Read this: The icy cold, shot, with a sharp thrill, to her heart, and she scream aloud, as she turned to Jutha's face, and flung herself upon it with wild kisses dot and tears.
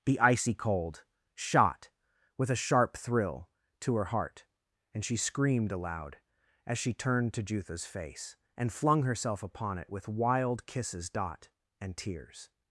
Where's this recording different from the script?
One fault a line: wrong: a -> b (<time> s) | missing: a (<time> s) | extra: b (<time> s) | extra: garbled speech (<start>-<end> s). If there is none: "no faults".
wrong: scream -> screamed (5.2 s)